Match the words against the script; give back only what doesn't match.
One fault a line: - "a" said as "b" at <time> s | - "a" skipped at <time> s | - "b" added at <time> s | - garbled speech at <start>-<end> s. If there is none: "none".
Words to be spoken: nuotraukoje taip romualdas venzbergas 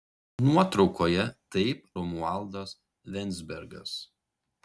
none